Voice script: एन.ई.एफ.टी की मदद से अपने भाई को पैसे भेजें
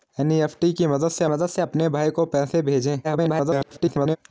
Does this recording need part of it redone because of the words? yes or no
yes